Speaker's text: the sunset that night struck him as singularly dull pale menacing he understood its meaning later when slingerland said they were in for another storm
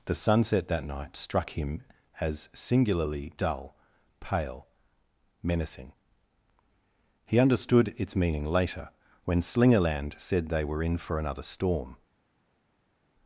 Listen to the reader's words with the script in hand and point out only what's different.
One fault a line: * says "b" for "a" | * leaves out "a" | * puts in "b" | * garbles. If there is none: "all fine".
all fine